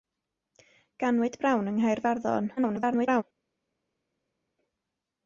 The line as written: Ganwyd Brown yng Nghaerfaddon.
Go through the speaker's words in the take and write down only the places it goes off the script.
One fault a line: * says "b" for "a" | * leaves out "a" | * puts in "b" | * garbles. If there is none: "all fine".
* garbles